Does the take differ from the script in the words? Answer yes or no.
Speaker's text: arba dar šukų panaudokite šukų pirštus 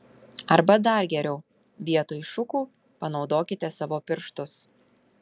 yes